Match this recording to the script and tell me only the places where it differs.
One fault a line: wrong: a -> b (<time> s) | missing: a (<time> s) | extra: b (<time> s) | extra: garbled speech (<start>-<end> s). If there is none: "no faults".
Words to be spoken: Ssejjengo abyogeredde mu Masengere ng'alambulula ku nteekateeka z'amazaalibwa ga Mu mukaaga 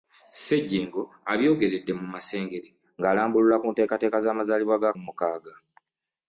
no faults